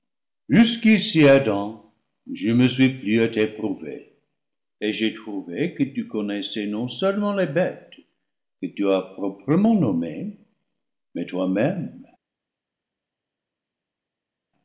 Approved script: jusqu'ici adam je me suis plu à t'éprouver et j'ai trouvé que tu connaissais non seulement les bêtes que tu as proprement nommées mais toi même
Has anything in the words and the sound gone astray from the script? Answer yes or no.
no